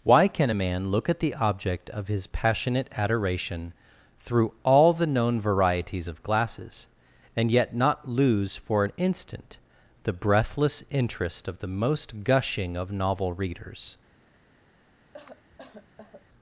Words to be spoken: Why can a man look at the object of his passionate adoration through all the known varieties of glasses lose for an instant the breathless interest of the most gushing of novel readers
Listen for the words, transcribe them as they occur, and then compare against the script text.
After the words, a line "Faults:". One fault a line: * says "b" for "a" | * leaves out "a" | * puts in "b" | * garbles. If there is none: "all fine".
Why can a man look at the object of his passionate adoration through all the known varieties of glasses and yet not lose for an instant the breathless interest of the most gushing of novel readers
Faults:
* puts in "and yet not"